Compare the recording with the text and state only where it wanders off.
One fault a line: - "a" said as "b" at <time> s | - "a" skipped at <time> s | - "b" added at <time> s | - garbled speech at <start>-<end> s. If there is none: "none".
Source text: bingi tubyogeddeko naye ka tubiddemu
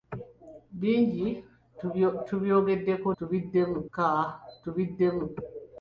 - "naye" said as "tubiddemu" at 3.2 s